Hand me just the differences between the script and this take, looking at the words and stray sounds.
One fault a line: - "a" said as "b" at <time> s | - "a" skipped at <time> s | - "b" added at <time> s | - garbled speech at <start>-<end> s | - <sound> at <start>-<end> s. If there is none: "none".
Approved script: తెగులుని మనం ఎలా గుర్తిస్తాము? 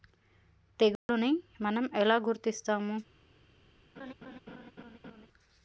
- dropout at 1.0-1.1 s
- laugh at 4.0-5.3 s